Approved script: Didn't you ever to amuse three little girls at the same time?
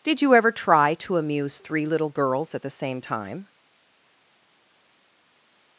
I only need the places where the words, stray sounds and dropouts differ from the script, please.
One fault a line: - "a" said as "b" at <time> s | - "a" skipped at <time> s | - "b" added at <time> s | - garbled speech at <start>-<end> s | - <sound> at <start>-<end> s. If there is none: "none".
- "Didn't" said as "Did" at 0.0 s
- "try" added at 0.5 s